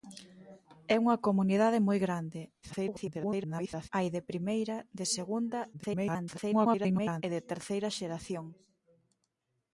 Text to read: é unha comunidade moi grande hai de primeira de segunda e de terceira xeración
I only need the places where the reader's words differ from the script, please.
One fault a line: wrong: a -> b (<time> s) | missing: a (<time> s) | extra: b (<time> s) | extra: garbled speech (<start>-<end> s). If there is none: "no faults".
extra: garbled speech (2.6-3.9 s)
extra: garbled speech (5.7-7.2 s)